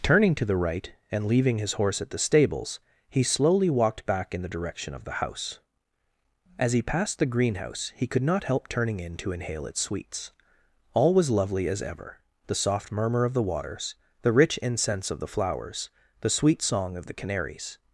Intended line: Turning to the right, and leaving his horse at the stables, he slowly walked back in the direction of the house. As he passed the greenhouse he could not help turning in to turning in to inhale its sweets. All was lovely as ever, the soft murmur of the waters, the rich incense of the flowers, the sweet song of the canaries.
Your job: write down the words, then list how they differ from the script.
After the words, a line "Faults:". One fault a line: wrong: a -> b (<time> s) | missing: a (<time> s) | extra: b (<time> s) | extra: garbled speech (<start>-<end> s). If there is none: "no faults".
Turning to the right, and leaving his horse at the stables, he slowly walked back in the direction of the house. As he passed the greenhouse he could not help turning in to inhale its sweets. All was lovely as ever, the soft murmur of the waters, the rich incense of the flowers, the sweet song of the canaries.
Faults:
missing: turning in to (9.3 s)